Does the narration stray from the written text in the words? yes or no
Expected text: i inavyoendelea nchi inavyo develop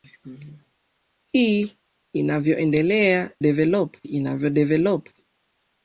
yes